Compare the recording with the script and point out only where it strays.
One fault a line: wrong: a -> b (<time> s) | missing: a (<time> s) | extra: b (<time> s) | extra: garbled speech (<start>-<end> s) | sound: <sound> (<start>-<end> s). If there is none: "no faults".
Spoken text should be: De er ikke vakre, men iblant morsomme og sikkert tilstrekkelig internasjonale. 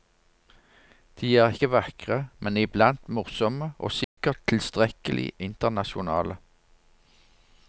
sound: dropout (4.0-4.2 s)